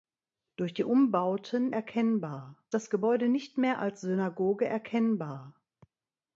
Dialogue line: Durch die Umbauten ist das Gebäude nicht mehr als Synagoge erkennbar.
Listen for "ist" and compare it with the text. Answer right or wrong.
wrong